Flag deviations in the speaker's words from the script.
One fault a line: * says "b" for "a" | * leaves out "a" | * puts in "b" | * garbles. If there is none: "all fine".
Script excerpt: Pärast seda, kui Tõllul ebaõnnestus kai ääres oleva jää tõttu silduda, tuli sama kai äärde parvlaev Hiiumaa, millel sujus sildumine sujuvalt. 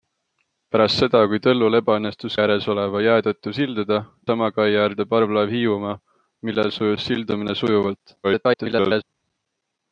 * leaves out "kai"
* leaves out "tuli"
* garbles